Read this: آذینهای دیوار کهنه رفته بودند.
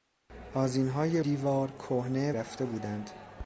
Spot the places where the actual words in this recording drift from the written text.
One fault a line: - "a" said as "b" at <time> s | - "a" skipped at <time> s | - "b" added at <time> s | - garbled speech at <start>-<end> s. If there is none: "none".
none